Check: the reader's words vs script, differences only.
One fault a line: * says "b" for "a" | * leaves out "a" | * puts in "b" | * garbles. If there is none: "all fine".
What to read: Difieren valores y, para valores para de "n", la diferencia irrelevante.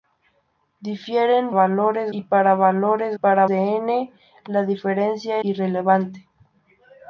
all fine